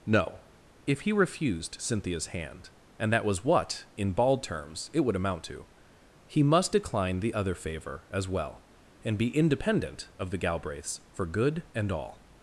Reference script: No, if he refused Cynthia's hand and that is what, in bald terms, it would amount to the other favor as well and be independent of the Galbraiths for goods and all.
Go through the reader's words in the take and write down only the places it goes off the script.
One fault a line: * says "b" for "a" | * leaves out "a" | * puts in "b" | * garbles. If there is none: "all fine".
* says "was" for "is"
* puts in "he must decline"
* says "good" for "goods"